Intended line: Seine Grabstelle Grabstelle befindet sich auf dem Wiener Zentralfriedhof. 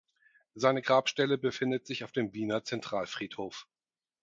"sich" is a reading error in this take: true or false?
false